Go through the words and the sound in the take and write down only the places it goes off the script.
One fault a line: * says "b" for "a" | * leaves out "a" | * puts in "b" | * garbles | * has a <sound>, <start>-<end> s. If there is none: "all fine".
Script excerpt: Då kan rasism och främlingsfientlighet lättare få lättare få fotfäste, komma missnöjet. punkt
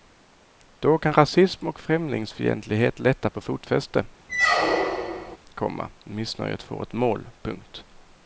* leaves out "lättare få"
* has a squeak, 4.3-5.4 s
* puts in "får ett mål"